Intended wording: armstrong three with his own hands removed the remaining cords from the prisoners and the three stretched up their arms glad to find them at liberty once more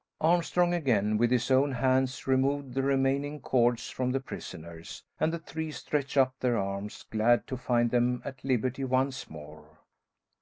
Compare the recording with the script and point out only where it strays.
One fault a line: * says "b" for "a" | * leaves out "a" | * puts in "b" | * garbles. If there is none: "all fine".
* says "again" for "three"